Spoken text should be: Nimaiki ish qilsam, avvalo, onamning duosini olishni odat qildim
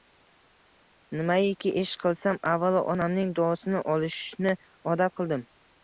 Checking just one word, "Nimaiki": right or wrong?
right